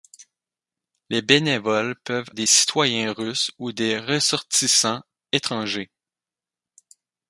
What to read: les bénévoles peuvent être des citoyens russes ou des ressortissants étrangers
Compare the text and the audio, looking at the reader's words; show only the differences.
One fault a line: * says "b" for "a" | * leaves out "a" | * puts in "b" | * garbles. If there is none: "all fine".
* leaves out "être"